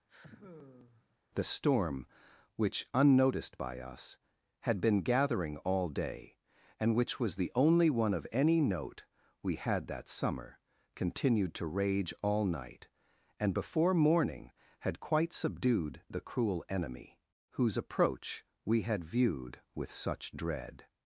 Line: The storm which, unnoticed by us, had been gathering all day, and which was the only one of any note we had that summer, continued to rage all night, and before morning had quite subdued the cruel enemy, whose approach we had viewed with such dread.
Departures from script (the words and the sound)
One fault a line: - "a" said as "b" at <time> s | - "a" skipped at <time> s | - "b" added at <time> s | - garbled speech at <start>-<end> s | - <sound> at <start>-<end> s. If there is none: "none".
- sigh at 0.1-1.2 s